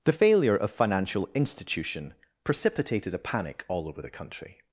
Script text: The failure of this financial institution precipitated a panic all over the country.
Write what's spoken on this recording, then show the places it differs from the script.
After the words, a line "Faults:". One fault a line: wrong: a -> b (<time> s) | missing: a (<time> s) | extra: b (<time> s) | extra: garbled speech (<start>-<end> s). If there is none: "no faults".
The failure of financial institution precipitated a panic all over the country.
Faults:
missing: this (0.7 s)